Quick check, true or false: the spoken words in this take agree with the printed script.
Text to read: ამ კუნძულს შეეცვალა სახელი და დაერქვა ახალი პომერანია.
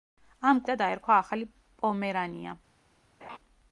false